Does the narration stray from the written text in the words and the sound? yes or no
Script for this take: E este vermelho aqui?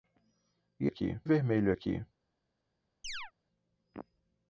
yes